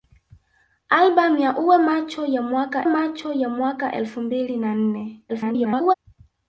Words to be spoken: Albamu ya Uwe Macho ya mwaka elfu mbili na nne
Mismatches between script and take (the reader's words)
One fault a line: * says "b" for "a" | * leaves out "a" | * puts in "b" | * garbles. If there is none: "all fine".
* puts in "Macho ya mwaka"
* garbles